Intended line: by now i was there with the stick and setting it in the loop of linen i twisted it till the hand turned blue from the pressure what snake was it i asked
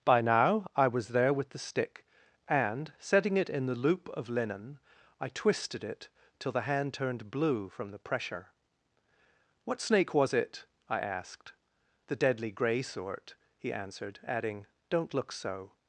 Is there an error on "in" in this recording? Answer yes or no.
no